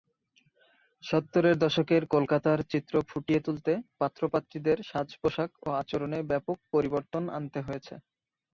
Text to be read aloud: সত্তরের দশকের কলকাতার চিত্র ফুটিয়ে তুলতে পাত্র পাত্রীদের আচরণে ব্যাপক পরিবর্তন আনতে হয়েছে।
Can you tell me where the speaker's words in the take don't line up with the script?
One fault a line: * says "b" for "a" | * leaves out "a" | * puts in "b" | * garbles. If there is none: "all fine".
* puts in "সাজ পোশাক ও"